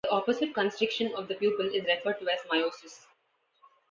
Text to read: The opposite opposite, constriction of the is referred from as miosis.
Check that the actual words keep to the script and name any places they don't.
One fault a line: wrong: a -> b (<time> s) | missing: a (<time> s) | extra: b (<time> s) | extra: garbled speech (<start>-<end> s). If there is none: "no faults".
missing: opposite (0.6 s)
extra: pupil (1.4 s)
wrong: from -> to (2.2 s)